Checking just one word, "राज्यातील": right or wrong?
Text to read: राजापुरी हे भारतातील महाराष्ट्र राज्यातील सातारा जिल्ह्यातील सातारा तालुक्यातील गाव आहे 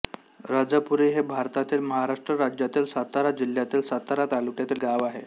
right